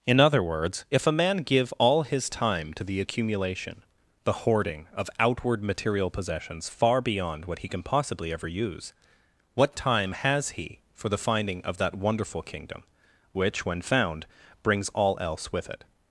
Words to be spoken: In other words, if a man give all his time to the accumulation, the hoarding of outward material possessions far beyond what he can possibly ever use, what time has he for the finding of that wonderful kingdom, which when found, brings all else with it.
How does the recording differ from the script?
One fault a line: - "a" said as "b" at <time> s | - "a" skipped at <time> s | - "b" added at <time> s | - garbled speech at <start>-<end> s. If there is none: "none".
none